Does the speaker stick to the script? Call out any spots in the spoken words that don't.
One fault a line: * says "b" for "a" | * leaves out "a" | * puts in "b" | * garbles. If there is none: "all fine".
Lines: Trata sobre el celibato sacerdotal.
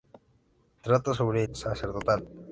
* leaves out "el celibato"